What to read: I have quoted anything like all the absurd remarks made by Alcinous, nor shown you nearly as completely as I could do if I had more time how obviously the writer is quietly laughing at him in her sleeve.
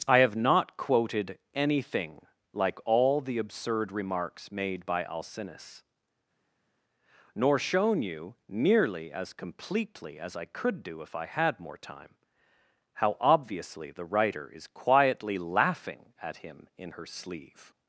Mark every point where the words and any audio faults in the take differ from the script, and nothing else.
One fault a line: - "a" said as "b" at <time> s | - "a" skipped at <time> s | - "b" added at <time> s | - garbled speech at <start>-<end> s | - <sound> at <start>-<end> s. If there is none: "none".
- "not" added at 0.3 s